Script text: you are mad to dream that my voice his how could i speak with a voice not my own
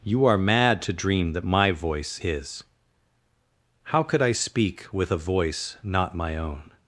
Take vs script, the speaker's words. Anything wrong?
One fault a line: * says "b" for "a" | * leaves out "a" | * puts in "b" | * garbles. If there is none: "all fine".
all fine